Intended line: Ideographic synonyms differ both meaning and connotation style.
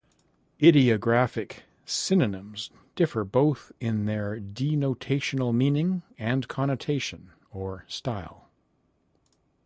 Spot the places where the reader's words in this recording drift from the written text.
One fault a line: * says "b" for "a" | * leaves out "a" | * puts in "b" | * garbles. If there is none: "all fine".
* puts in "in their denotational"
* puts in "or"